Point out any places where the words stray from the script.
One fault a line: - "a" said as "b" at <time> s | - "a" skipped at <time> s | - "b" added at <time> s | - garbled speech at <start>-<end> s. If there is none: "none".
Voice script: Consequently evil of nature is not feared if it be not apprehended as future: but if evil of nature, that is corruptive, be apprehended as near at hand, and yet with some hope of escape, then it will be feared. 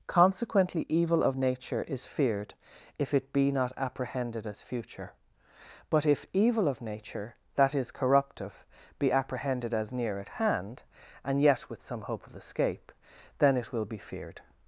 - "not" skipped at 2.1 s